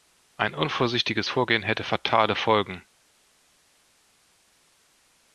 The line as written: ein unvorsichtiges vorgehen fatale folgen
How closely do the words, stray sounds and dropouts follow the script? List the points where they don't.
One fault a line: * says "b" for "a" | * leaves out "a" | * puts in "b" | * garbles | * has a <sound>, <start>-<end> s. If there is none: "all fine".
* puts in "hätte"